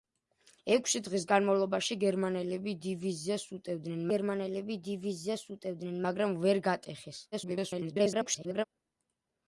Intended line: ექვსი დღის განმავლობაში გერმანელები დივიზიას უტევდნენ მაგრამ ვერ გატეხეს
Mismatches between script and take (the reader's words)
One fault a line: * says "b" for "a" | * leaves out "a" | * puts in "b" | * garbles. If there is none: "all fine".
* puts in "გერმანელები დივიზიას უტევდნენ"
* garbles